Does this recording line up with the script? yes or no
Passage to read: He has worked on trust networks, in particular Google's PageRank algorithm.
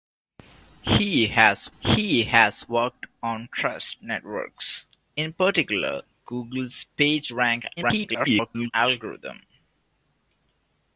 no